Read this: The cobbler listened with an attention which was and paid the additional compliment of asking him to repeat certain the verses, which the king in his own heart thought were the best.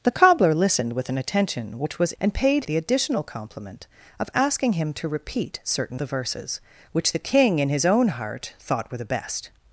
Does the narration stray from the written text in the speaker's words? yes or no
no